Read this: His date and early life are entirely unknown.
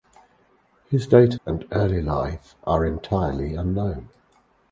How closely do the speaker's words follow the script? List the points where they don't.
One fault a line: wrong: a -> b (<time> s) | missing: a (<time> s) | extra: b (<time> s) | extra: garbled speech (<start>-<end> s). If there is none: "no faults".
no faults